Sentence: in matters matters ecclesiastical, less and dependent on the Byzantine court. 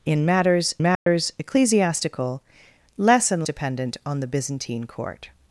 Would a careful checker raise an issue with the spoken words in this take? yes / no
no